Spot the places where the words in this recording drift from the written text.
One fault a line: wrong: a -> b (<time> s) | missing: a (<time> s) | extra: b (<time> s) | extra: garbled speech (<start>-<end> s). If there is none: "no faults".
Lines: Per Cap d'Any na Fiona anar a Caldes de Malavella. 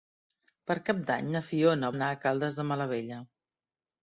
no faults